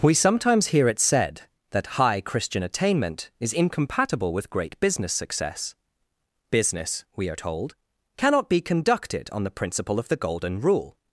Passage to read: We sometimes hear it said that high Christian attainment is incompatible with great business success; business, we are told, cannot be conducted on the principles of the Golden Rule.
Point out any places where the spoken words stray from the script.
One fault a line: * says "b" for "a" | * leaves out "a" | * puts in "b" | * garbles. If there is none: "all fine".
* says "principle" for "principles"